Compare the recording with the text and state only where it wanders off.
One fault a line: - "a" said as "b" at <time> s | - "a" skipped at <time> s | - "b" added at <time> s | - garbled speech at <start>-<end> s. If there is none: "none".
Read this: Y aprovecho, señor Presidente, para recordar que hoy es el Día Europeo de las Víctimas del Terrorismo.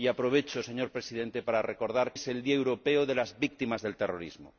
- "que hoy" skipped at 2.1 s